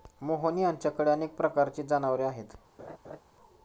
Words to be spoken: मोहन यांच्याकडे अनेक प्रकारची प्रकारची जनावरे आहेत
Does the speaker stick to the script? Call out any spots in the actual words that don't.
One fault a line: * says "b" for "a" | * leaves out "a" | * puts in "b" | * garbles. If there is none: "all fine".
* leaves out "प्रकारची"